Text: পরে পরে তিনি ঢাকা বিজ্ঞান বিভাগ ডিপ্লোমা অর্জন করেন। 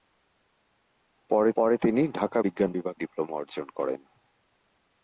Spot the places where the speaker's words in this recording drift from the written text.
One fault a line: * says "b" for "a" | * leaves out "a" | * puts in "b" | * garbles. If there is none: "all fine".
all fine